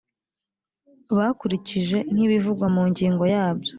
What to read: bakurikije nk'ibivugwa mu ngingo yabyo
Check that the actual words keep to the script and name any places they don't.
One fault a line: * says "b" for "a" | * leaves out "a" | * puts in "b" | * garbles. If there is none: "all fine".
all fine